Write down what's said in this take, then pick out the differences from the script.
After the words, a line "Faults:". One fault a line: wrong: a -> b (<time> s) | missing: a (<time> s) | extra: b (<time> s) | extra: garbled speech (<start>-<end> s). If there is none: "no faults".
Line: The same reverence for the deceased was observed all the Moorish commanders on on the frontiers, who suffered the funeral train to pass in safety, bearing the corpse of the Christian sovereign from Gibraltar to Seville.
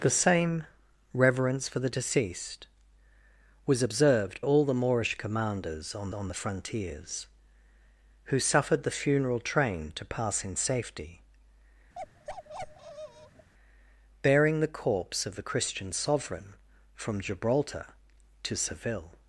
The same reverence for the deceased was observed all the Moorish commanders on on the frontiers, who suffered the funeral train to pass in safety, bearing the corpse of the Christian sovereign from Gibraltar to Seville.
Faults:
no faults